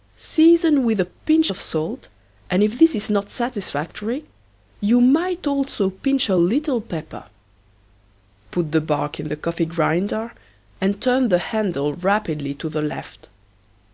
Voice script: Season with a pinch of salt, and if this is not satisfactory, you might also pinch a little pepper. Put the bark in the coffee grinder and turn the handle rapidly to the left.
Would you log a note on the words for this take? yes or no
no